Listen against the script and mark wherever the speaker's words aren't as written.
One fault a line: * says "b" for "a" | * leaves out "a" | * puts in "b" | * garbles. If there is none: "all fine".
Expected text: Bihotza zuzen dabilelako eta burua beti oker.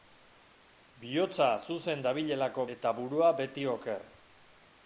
all fine